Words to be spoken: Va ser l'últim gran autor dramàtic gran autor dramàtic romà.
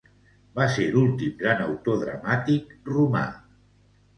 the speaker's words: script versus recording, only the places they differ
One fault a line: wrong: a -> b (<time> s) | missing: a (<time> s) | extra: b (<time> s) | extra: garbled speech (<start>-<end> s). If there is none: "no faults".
missing: gran autor dramàtic (2.8 s)